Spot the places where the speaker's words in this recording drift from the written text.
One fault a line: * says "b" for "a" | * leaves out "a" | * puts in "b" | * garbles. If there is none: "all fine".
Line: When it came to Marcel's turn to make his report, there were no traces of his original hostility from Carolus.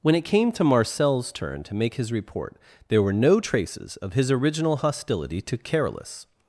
* says "to" for "from"